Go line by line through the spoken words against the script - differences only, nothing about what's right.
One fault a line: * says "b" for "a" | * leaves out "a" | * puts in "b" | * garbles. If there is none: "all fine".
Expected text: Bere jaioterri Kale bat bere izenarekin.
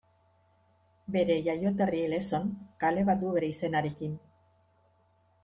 * puts in "Lezon"
* puts in "du"